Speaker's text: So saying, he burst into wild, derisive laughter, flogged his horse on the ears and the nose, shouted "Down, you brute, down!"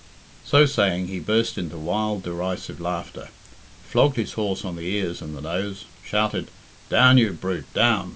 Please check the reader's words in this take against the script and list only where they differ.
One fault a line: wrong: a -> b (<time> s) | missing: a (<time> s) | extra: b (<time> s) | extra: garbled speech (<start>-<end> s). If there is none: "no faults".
no faults